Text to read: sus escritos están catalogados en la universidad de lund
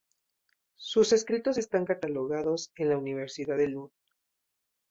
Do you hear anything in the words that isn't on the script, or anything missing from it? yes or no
no